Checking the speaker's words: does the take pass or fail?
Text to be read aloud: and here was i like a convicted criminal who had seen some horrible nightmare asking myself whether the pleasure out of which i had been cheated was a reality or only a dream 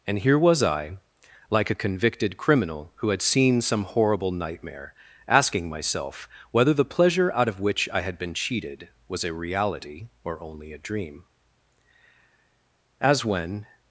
fail